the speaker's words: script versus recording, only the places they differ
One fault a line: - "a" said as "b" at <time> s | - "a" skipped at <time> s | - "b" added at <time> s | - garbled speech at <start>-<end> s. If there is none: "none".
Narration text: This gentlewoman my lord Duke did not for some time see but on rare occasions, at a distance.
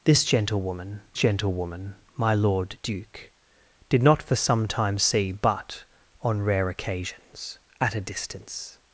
- "gentlewoman" added at 1.1 s